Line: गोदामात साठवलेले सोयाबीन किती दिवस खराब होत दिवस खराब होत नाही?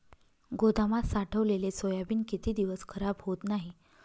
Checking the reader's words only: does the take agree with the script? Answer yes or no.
no